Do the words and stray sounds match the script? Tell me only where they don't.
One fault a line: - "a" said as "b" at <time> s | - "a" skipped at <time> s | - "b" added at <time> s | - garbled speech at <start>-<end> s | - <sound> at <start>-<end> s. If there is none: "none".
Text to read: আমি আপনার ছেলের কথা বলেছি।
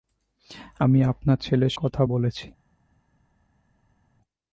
none